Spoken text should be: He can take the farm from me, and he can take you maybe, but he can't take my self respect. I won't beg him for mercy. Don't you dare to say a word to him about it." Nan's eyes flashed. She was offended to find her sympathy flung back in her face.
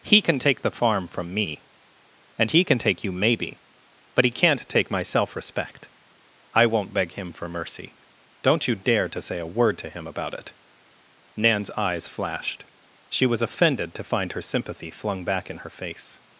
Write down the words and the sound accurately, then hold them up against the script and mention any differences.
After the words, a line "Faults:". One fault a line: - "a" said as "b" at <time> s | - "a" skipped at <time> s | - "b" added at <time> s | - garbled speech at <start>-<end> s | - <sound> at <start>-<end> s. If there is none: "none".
He can take the farm from me, and he can take you maybe, but he can't take my self respect. I won't beg him for mercy. Don't you dare to say a word to him about it." Nan's eyes flashed. She was offended to find her sympathy flung back in her face.
Faults:
none